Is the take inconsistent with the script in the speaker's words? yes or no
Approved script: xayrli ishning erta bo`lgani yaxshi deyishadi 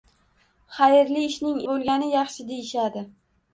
yes